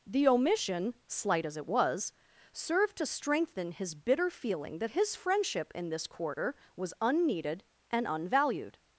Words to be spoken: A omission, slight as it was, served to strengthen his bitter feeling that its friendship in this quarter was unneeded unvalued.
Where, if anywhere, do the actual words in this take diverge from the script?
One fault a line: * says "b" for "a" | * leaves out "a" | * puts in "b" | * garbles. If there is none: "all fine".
* says "The" for "A"
* says "his" for "its"
* puts in "and"